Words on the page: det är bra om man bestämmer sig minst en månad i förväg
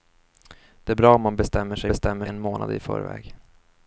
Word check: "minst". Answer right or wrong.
wrong